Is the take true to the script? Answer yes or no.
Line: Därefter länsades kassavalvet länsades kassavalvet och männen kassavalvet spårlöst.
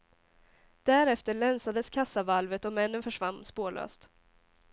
no